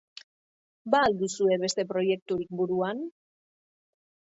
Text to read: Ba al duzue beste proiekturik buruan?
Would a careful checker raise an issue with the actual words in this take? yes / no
no